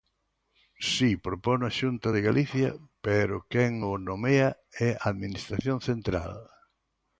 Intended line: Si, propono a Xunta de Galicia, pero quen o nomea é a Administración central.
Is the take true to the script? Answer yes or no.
yes